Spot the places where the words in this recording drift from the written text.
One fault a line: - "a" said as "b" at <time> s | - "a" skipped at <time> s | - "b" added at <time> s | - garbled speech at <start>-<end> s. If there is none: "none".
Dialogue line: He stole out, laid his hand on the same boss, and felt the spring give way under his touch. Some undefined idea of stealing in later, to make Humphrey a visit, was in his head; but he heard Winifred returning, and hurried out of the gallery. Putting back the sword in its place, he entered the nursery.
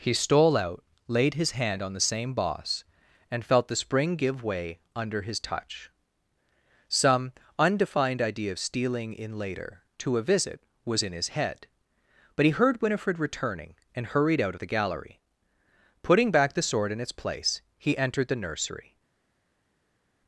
- "make Humphrey" skipped at 10.2 s